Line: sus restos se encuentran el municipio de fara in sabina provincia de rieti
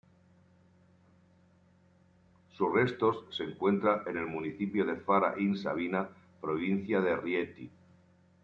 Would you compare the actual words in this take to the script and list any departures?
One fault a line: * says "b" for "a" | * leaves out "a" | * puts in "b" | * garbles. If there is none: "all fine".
* puts in "en"